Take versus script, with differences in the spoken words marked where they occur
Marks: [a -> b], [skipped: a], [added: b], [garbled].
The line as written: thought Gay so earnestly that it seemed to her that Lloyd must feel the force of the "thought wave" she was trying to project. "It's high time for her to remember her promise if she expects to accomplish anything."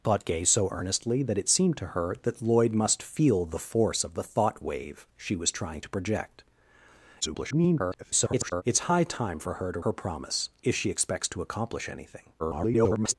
thought Gay so earnestly that it seemed to her that Lloyd must feel the force of the "thought wave" she was trying to project. [garbled] "It's high time for her to [skipped: remember] her promise if she expects to accomplish anything." [garbled]